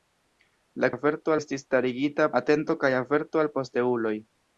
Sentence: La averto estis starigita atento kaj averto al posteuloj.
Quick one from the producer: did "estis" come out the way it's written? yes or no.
yes